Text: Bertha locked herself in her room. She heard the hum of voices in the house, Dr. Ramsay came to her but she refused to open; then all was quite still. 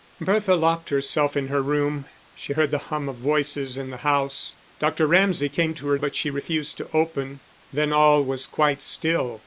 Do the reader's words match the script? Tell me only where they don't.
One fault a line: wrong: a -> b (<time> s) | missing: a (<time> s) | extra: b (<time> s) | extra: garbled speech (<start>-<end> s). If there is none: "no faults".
no faults